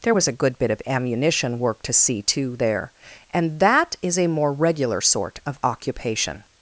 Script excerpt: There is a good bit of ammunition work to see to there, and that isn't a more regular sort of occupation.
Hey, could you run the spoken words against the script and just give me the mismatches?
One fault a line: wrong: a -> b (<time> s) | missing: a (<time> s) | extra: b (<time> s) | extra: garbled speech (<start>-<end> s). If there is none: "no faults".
wrong: is -> was (0.1 s)
wrong: isn't -> is (4.0 s)